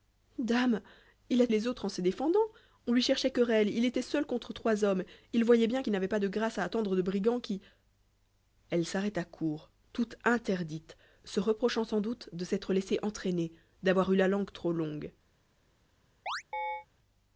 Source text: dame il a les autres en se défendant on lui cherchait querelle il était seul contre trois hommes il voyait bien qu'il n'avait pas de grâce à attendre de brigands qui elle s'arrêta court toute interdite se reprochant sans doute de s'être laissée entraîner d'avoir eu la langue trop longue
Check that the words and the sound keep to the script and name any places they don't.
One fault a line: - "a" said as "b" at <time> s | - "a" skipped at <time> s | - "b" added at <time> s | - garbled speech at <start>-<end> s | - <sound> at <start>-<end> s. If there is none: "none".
- chirp at 16.3-16.9 s